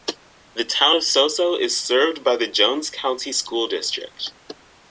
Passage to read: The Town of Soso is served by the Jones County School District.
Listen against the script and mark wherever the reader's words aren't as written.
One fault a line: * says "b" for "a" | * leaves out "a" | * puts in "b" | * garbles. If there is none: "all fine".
all fine